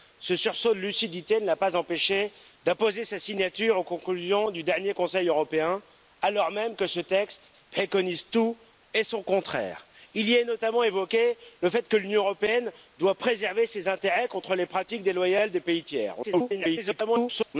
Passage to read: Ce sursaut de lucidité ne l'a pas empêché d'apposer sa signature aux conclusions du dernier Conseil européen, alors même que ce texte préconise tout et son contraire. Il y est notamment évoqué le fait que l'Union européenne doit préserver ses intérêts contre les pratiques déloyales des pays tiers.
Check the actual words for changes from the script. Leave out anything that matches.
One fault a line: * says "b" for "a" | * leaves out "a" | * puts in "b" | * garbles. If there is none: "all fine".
* garbles